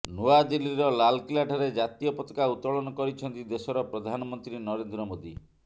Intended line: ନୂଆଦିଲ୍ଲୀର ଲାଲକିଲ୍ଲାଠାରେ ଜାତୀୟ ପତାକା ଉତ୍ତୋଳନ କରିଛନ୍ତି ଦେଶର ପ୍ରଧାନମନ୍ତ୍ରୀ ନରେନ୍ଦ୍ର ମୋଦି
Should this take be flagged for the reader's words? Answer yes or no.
no